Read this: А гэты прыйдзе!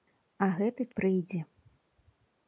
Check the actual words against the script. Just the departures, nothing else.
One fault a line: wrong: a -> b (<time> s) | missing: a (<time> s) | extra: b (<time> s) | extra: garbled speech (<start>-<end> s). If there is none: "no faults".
no faults